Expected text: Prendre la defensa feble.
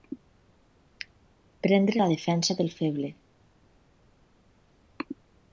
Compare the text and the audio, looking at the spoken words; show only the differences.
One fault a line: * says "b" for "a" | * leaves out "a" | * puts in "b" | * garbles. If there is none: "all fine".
* puts in "del"